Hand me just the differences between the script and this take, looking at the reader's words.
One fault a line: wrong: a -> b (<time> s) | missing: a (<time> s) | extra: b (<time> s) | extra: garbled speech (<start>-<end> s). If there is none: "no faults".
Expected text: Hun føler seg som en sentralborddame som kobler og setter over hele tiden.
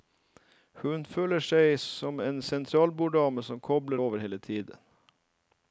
missing: og setter (4.0 s)